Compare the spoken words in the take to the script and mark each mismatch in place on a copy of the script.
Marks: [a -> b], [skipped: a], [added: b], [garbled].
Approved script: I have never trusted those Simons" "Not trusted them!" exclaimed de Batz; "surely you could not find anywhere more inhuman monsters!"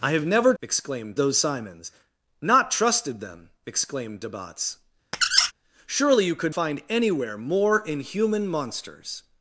I have never [trusted -> exclaimed] those Simons" "Not trusted them!" exclaimed de Batz; "surely you could [skipped: not] find anywhere more inhuman monsters!"